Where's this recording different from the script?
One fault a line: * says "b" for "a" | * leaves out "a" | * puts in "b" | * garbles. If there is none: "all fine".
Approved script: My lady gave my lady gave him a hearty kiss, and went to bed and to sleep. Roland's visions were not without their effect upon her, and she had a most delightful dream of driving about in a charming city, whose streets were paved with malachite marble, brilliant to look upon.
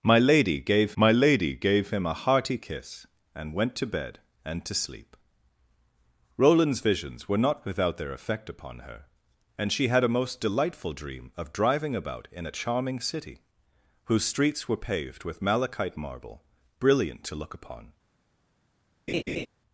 all fine